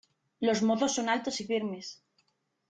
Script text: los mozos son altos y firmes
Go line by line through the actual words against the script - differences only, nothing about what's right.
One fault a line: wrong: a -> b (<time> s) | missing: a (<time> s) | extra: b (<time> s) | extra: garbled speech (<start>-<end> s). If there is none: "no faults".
no faults